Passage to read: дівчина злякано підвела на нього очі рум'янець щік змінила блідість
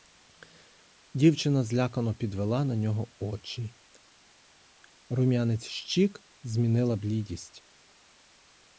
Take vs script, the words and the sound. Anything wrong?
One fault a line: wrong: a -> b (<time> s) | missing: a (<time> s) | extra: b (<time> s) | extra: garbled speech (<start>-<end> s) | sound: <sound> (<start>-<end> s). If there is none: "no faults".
no faults